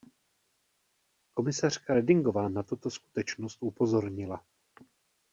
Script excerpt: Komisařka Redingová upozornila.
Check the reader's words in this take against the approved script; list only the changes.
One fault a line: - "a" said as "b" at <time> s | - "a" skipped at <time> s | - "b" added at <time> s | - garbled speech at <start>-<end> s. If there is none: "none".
- "na tuto skutečnost" added at 2.5 s